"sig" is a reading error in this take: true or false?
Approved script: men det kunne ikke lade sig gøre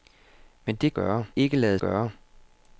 true